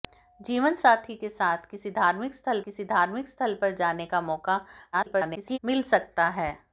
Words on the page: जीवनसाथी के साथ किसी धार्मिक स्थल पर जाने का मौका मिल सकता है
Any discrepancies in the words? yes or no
yes